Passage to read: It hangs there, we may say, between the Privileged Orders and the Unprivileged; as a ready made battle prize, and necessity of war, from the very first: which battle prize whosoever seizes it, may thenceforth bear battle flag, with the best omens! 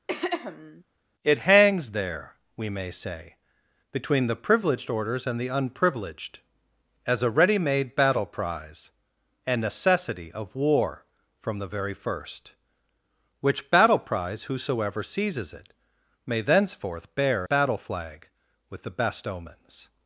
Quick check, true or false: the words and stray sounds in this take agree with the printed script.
false